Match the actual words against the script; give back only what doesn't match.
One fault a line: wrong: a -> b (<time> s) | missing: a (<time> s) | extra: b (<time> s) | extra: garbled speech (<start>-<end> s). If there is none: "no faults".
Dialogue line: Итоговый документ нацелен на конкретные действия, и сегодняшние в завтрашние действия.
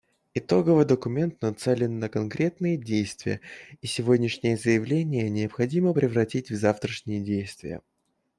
extra: заявления необходимо превратить (4.6 s)